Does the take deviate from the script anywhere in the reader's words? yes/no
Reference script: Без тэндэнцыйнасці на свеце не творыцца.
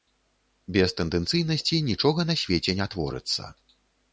yes